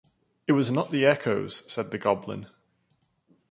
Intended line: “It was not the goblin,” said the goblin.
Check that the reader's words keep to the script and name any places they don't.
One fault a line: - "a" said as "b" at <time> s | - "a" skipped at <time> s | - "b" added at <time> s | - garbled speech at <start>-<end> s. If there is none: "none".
- "goblin" said as "echoes" at 1.1 s